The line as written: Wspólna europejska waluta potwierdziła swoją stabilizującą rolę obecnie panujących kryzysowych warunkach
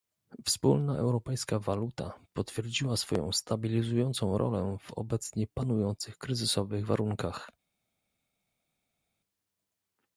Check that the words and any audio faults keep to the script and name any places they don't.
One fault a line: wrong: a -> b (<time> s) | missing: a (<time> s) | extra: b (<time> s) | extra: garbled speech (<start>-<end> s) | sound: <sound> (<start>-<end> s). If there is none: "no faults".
extra: w (4.8 s)